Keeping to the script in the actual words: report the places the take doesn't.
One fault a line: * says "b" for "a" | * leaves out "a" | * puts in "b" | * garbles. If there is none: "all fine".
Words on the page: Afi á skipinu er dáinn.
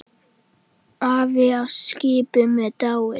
all fine